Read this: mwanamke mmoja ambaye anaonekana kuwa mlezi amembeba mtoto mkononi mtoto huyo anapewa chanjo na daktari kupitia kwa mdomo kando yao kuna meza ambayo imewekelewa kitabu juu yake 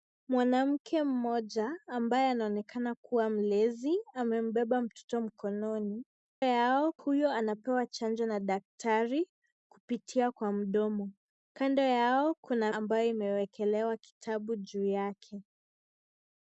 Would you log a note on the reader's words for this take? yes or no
yes